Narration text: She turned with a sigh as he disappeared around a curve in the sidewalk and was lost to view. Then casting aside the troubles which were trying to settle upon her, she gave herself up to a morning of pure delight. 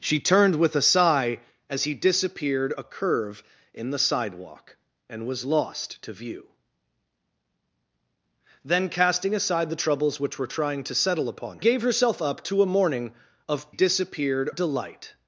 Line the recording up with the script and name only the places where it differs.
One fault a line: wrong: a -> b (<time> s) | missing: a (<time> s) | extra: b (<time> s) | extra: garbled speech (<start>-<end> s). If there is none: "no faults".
missing: around (2.7 s)
missing: her she (11.6 s)
wrong: pure -> disappeared (13.7 s)